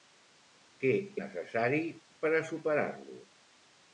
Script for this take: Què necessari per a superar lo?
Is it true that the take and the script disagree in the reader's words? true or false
false